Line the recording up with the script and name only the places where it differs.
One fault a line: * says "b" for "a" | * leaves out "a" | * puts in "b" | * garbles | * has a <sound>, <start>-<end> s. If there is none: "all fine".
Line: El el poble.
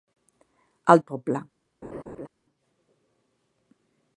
* has a laugh, 1.8-2.3 s